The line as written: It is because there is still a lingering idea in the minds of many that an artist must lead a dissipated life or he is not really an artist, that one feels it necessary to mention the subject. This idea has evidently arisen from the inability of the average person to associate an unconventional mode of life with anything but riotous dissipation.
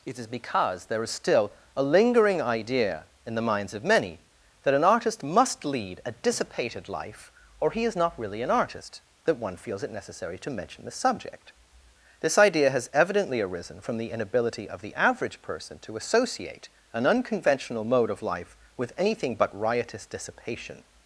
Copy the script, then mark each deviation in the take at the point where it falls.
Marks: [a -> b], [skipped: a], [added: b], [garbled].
It is because there is still a lingering idea in the minds of many that an artist must lead a dissipated life or he is not really an artist, that one feels it necessary to mention the subject. This idea has evidently arisen from the inability of the average person to associate an unconventional mode of life with anything but riotous dissipation.